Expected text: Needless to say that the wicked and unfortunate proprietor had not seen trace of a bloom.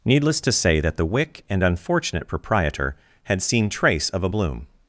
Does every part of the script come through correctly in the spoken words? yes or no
no